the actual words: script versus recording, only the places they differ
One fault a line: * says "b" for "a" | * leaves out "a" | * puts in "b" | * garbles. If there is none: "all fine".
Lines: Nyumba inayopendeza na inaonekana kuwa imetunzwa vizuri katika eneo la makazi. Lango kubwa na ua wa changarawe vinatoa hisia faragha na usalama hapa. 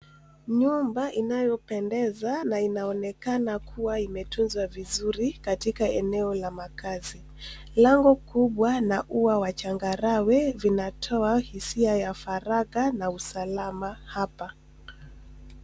* puts in "ya"